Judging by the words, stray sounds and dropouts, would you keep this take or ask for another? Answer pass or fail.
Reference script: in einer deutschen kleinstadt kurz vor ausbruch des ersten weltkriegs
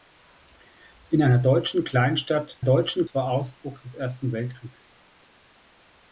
fail